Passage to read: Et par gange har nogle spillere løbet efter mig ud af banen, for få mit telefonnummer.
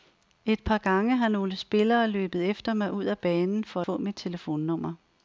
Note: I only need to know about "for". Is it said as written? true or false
true